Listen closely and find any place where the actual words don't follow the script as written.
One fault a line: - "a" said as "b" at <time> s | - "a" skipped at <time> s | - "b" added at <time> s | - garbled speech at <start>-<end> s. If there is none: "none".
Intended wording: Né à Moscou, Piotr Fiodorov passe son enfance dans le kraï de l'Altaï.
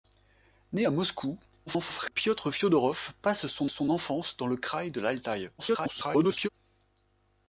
- garbled speech at 1.7-2.1 s
- "son" added at 3.7 s
- garbled speech at 5.6-6.5 s